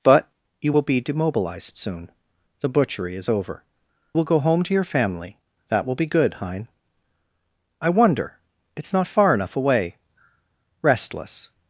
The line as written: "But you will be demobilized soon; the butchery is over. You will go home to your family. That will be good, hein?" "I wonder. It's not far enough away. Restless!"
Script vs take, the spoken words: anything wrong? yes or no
yes